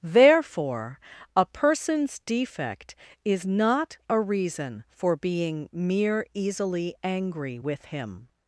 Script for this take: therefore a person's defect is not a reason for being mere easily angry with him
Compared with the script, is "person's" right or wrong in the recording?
right